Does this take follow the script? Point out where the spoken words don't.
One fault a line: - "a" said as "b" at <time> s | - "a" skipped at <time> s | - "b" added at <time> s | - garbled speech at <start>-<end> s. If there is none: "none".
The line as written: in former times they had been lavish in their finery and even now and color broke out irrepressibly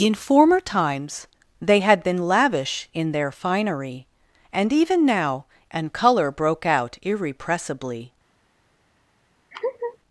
none